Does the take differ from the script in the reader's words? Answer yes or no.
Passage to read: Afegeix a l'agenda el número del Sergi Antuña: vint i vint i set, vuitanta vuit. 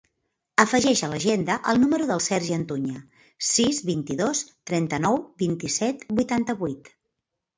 yes